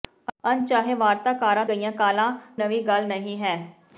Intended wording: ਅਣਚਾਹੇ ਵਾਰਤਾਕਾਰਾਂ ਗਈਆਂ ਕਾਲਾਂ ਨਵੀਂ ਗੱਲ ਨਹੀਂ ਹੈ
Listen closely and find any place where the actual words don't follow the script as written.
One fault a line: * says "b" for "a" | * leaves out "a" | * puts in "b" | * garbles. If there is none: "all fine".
all fine